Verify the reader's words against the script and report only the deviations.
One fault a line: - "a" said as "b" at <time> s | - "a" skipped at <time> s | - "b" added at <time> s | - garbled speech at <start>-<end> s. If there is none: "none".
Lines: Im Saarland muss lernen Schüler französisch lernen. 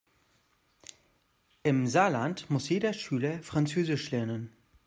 - "lernen" said as "jeder" at 2.7 s